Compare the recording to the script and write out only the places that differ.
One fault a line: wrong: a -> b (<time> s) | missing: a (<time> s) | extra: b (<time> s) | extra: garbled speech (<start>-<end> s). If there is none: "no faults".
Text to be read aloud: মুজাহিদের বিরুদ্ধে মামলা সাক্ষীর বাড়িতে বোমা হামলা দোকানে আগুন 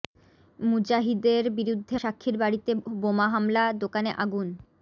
missing: মামলা (1.9 s)